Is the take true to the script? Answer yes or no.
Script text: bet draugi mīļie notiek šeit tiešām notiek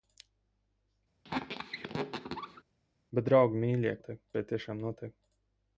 yes